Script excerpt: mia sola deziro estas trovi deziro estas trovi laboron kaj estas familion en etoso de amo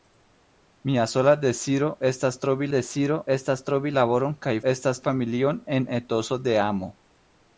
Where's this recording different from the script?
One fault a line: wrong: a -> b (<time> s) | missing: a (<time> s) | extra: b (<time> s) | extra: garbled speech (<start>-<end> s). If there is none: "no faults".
no faults